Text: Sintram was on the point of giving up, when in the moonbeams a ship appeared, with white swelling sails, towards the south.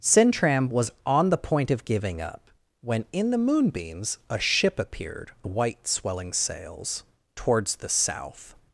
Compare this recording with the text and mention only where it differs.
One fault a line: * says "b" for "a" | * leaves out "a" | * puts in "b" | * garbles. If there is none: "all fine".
* leaves out "with"